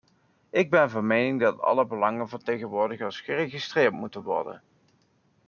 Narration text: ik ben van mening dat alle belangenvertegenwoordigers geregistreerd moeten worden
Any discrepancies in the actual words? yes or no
no